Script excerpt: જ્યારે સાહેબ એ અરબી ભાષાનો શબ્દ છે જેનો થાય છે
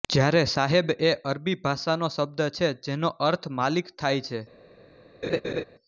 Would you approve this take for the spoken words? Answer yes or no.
no